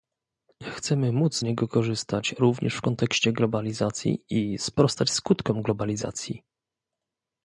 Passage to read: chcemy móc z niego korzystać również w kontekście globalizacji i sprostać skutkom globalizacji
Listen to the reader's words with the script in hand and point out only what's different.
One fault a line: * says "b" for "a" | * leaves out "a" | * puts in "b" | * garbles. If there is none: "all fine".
* leaves out "z"